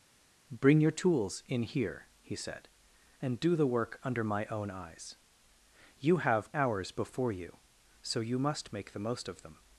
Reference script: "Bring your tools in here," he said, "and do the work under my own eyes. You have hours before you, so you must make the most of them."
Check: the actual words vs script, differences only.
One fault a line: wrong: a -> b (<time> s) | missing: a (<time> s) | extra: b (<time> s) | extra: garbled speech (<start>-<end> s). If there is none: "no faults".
no faults